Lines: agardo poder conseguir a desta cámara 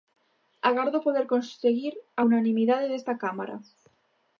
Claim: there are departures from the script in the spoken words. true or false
true